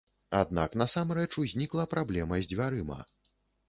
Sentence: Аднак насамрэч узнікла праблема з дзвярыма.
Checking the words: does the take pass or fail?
pass